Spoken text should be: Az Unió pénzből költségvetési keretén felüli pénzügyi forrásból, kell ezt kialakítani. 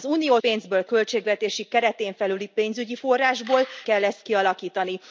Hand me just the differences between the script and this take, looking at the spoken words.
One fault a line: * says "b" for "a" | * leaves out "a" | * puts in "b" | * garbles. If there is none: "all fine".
all fine